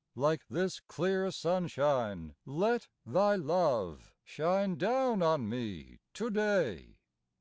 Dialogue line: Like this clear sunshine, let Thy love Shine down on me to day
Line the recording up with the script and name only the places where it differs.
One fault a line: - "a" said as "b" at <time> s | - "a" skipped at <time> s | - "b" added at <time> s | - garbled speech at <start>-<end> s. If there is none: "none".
none